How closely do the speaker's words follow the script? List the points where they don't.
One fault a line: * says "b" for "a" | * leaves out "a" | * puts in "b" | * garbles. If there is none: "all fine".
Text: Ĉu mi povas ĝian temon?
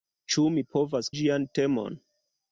all fine